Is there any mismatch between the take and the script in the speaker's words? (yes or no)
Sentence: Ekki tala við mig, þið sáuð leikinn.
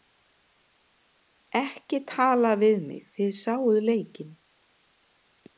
no